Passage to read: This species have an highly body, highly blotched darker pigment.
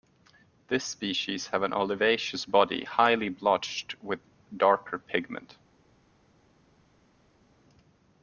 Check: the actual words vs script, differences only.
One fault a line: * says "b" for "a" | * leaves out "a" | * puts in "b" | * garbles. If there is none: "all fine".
* says "olivaceous" for "highly"
* puts in "with"